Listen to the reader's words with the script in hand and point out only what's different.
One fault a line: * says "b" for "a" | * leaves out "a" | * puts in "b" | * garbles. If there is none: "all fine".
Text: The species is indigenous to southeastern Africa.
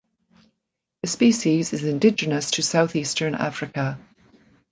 all fine